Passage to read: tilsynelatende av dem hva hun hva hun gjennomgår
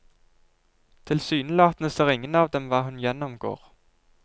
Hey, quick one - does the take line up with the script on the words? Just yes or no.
no